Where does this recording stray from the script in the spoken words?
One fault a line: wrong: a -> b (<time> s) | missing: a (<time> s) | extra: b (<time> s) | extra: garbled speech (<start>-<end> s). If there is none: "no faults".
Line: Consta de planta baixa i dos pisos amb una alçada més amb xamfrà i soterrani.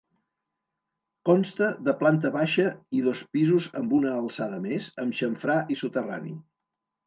no faults